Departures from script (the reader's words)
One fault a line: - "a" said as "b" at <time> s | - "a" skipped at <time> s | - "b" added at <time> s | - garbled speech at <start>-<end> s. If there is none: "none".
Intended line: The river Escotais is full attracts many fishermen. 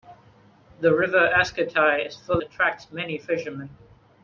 none